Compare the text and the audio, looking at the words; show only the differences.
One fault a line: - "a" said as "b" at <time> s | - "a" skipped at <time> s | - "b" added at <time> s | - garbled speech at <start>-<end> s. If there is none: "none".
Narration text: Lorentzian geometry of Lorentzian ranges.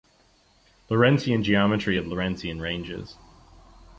none